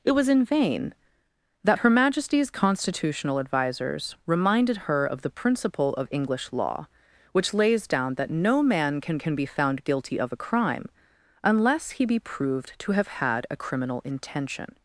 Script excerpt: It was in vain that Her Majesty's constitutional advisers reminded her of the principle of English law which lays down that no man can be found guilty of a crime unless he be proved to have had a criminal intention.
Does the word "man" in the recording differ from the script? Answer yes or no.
no